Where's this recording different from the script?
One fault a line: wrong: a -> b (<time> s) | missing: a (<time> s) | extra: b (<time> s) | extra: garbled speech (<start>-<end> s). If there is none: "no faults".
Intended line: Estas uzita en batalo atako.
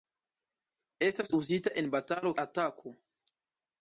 no faults